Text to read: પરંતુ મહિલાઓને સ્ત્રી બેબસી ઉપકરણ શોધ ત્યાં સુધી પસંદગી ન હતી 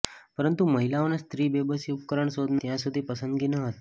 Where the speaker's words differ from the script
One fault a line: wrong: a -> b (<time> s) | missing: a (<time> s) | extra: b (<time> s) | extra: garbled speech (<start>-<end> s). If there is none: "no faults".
no faults